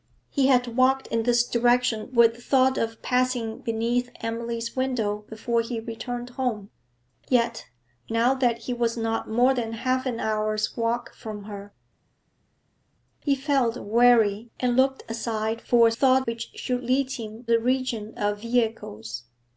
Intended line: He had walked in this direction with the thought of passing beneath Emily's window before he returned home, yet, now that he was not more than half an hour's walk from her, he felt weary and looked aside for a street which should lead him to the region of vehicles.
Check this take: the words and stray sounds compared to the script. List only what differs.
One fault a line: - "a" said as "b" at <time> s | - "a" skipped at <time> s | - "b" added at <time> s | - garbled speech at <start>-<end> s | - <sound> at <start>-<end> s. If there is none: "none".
- "street" said as "thought" at 15.9 s
- "to" skipped at 17.5 s